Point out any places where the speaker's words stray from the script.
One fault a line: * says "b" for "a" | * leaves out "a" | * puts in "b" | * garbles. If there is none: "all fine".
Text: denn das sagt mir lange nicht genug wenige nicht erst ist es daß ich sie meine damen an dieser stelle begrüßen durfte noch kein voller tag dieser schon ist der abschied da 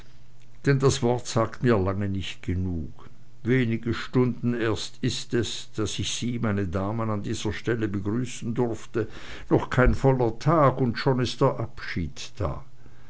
* puts in "wort"
* says "stunden" for "nicht"
* says "und" for "dieser"